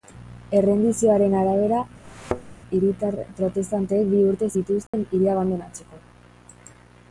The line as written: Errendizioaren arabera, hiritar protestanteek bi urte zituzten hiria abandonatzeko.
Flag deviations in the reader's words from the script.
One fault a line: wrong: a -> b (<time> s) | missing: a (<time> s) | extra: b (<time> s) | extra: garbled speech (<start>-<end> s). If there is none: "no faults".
no faults